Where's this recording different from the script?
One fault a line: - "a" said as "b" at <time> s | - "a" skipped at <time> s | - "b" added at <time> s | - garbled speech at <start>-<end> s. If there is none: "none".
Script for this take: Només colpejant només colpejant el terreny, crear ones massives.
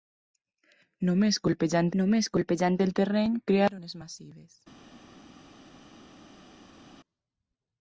none